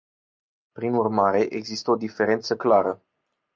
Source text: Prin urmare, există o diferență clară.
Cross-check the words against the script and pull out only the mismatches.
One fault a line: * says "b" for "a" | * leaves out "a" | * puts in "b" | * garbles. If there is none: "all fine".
all fine